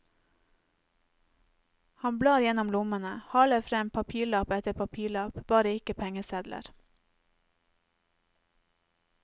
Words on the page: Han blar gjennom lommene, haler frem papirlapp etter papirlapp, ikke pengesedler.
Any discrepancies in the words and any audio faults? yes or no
yes